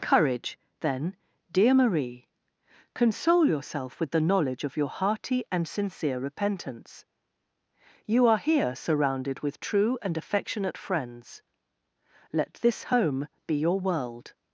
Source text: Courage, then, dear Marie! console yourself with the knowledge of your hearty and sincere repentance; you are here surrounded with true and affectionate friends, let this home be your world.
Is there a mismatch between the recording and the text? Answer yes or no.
no